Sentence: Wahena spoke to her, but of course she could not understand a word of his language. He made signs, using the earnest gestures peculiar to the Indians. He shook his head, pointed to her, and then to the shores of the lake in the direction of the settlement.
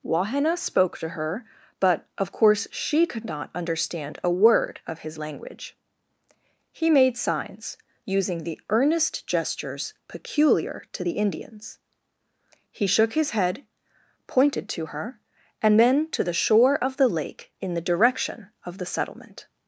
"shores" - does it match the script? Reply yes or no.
no